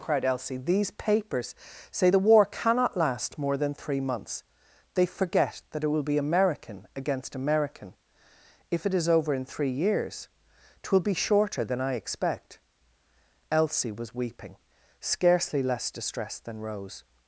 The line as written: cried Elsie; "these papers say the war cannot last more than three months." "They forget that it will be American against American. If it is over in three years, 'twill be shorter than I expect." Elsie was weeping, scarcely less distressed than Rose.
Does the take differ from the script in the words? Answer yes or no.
no